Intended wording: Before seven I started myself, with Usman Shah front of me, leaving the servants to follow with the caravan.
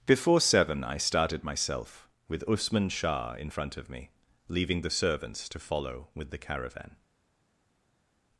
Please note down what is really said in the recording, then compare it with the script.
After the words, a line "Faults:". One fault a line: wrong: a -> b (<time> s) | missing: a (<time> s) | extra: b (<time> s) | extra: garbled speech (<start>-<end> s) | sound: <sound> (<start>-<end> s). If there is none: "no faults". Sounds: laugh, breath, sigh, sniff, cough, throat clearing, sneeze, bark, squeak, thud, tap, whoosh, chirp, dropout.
Before seven I started myself, with Usman Shah in front of me, leaving the servants to follow with the caravan.
Faults:
extra: in (3.3 s)